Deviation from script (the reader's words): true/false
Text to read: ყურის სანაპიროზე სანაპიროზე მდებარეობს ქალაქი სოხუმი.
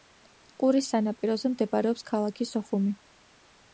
true